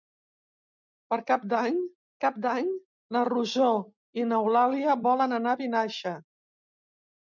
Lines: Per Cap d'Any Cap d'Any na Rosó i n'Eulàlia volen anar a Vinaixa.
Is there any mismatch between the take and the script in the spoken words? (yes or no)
no